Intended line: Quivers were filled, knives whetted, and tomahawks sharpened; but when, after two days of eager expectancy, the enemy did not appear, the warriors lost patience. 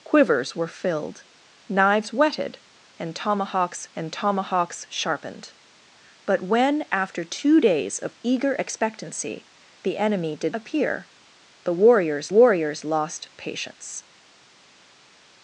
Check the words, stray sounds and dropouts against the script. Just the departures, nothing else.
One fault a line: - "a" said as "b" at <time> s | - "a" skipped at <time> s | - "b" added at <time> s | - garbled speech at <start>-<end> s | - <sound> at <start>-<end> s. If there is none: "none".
- "and tomahawks" added at 4.0 s
- "not" skipped at 10.5 s
- "warriors" added at 12.3 s